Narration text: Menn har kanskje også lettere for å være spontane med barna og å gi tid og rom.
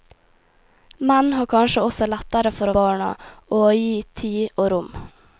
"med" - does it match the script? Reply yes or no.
no